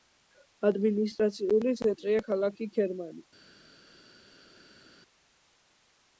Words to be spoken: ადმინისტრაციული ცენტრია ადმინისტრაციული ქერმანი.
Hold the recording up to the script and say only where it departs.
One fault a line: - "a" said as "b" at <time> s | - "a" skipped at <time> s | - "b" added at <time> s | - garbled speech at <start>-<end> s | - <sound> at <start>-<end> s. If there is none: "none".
- "ადმინისტრაციული" said as "ქალაქი" at 2.3 s